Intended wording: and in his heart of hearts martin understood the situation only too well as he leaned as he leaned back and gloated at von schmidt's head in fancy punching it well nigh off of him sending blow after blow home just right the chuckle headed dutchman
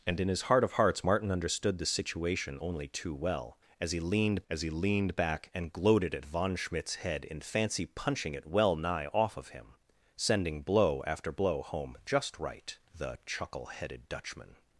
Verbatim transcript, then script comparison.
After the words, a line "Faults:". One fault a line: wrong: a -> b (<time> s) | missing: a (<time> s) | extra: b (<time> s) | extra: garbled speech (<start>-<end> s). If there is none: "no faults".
and in his heart of hearts martin understood the situation only too well as he leaned as he leaned back and gloated at von schmidt's head in fancy punching it well nigh off of him sending blow after blow home just right the chuckle headed dutchman
Faults:
no faults